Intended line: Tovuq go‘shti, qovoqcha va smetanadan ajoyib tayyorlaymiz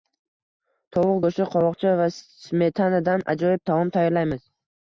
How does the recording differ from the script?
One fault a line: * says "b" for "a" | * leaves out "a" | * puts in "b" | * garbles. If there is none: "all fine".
* puts in "taom"